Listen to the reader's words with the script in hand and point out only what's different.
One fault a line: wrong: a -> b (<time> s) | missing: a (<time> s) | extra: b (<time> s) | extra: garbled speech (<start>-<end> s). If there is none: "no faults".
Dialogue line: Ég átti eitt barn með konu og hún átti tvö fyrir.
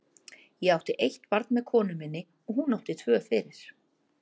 extra: minni (2.0 s)